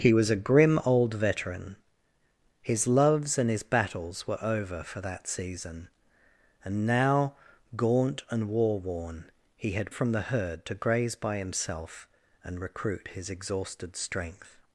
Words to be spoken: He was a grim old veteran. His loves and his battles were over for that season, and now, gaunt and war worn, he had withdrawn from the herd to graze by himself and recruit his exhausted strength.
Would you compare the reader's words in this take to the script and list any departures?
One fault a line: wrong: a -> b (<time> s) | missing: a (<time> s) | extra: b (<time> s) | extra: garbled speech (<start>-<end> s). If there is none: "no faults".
missing: withdrawn (9.9 s)